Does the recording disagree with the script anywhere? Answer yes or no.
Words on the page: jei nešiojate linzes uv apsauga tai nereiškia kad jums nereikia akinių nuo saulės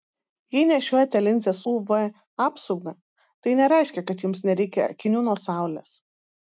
no